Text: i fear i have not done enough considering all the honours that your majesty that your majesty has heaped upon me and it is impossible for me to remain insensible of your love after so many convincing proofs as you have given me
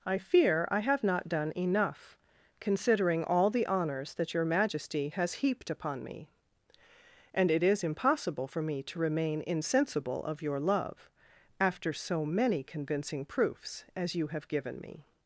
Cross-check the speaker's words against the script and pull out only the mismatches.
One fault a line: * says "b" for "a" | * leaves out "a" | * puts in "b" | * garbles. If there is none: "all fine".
* leaves out "that your majesty"